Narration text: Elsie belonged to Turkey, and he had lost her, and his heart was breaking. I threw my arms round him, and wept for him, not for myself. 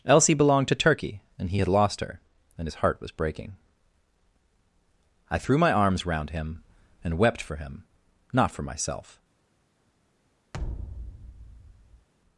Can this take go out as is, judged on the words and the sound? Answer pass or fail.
fail